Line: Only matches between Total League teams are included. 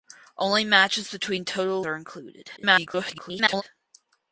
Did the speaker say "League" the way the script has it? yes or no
no